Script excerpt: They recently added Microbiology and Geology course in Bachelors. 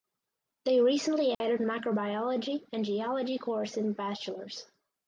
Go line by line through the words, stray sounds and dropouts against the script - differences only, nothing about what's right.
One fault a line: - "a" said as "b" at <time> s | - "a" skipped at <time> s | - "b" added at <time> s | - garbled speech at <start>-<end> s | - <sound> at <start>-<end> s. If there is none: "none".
- dropout at 1.3-1.4 s